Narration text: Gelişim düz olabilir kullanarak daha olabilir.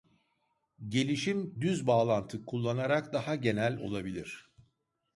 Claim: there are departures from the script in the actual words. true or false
true